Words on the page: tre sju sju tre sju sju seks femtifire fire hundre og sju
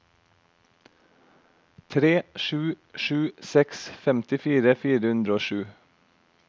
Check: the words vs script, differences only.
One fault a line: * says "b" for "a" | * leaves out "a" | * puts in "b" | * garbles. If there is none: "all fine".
* leaves out "tre sju sju"